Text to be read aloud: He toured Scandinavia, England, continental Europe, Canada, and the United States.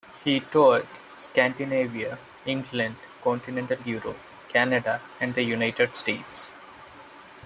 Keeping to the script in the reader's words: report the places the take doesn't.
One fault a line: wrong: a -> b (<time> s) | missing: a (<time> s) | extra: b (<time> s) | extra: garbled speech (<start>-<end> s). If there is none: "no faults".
no faults